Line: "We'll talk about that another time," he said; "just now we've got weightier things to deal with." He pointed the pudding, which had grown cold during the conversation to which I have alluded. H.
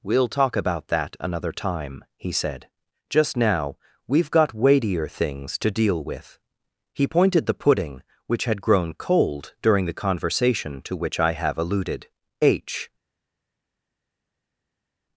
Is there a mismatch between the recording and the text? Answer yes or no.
no